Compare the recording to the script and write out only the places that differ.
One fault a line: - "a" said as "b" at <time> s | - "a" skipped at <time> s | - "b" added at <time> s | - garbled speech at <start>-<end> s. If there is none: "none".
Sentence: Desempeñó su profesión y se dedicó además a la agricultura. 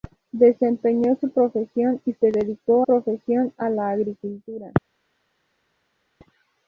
- "además" said as "profesión" at 2.8 s